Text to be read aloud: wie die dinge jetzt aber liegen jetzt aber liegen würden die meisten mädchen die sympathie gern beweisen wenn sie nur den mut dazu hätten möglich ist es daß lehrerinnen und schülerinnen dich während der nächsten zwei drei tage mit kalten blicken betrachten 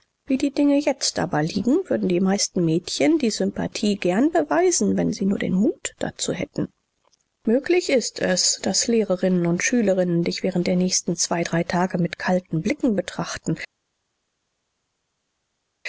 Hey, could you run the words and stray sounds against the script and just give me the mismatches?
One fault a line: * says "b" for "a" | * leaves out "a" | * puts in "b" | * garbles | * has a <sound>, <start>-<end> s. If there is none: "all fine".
* leaves out "jetzt aber liegen"